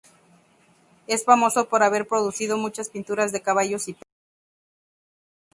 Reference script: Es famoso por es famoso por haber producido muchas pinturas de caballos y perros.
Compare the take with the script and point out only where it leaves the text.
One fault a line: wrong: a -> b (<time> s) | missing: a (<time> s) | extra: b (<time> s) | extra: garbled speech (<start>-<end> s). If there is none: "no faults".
missing: es famoso por (1.8 s)